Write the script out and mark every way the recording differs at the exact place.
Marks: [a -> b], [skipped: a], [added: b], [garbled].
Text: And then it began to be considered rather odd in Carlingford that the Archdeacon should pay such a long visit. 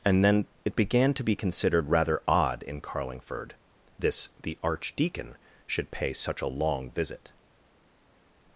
And then it began to be considered rather odd in Carlingford [that -> this] the Archdeacon should pay such a long visit.